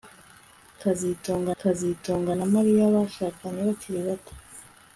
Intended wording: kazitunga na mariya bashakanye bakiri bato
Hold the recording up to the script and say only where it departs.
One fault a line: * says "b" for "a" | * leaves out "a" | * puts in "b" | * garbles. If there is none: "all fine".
* puts in "kazitunga"